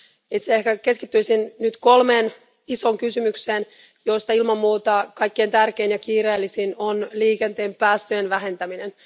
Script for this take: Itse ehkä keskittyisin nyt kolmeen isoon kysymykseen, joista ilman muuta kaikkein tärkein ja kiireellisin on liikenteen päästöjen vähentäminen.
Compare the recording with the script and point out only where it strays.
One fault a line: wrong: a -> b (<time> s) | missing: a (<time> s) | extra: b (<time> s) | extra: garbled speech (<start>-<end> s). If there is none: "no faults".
no faults